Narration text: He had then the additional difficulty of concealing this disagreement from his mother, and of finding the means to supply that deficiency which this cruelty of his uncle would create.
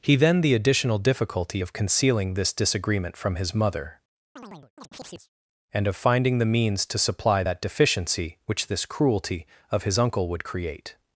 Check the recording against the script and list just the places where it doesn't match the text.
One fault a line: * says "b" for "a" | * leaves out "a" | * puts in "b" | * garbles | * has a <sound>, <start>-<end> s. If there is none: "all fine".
* leaves out "had"
* has a chirp, 4.4-5.3 s